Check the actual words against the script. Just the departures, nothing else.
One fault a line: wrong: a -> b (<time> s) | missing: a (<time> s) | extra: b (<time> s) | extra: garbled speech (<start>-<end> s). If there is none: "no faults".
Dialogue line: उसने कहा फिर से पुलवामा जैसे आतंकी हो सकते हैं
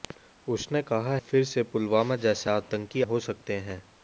no faults